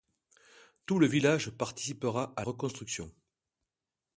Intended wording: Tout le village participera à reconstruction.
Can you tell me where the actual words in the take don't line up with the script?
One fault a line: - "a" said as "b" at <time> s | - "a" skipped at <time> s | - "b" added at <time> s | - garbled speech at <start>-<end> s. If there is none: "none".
none